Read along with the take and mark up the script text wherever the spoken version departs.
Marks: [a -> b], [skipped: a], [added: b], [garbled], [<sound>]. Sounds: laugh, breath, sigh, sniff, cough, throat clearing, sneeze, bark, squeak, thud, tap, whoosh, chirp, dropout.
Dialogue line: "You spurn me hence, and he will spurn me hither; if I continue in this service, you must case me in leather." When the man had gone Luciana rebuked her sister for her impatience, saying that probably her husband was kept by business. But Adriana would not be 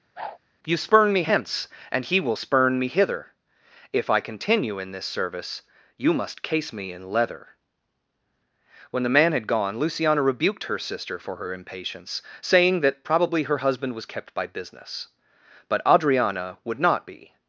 [whoosh] "You spurn me hence, and he will spurn me hither; if I continue in this service, you must case me in leather." When the man had gone Luciana rebuked her sister for her impatience, saying that probably her husband was kept by business. But Adriana would not be